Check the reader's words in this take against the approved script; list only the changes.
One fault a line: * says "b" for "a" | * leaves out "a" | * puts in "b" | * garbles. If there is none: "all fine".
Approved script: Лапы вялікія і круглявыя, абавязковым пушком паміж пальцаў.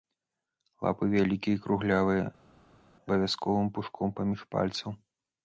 all fine